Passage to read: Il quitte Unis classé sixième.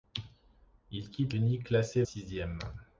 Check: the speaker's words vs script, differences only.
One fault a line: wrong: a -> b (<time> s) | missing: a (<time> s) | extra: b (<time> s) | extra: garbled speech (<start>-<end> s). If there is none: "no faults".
no faults